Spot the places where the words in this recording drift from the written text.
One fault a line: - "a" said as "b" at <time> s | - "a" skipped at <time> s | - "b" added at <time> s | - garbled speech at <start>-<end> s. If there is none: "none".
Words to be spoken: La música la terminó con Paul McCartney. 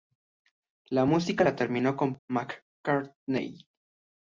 - "Paul" skipped at 2.2 s